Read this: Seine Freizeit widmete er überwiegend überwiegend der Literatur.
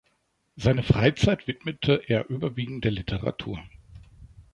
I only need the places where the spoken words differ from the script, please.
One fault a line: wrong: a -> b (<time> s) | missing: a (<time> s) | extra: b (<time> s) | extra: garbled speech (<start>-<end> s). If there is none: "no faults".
missing: überwiegend (2.9 s)